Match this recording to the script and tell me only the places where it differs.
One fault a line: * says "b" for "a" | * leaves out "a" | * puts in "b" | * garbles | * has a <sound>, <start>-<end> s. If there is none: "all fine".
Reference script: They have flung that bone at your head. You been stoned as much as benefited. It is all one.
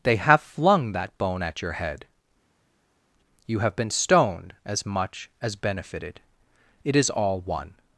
* puts in "have"